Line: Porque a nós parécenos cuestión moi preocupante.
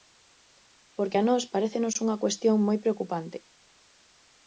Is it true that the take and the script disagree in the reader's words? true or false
true